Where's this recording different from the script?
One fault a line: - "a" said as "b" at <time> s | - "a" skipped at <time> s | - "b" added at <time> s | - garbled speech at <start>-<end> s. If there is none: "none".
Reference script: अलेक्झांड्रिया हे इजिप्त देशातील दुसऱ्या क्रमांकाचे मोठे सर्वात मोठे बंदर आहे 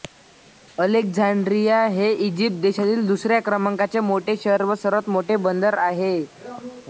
- "शहर व" added at 4.4 s